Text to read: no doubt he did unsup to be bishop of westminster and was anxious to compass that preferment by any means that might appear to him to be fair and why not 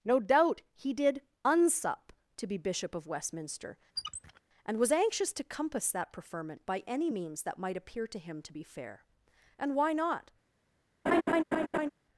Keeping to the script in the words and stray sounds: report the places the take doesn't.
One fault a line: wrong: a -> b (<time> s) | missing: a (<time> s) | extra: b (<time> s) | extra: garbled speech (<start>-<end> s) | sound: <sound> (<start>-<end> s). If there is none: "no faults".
sound: squeak (4.0-4.4 s)
sound: laugh (11.1-11.9 s)